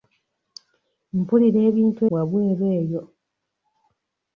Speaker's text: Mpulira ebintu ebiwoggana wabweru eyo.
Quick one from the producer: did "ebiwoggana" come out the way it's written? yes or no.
no